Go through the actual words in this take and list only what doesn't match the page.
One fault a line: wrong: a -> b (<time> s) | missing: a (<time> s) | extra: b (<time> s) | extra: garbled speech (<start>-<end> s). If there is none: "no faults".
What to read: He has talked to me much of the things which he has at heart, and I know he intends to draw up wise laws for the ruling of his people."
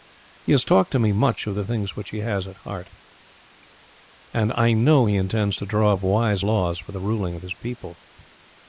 no faults